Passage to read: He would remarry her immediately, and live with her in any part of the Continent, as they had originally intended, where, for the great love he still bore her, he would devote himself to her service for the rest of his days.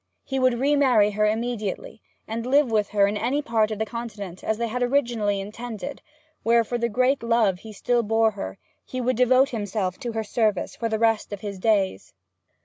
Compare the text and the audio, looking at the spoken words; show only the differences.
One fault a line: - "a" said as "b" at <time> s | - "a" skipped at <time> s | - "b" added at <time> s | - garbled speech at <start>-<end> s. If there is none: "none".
none